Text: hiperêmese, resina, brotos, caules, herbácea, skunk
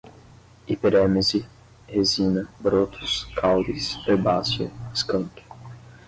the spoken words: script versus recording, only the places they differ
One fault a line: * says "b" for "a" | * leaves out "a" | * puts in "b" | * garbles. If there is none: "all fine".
all fine